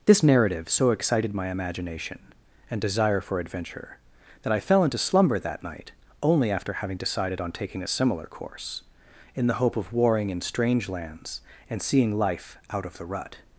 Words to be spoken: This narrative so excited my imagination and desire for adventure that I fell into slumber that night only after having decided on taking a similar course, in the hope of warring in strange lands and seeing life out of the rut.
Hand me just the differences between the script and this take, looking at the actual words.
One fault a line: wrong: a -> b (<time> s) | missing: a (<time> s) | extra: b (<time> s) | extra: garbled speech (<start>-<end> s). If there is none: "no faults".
no faults